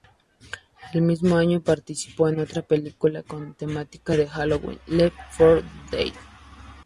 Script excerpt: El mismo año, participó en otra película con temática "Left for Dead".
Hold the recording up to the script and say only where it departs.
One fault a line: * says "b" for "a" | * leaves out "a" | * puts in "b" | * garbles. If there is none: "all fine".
* puts in "de Halloween"